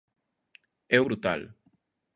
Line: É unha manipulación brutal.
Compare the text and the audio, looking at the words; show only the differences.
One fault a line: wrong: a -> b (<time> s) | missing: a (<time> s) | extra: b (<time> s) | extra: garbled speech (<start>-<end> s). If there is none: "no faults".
missing: unha manipulación (1.0 s)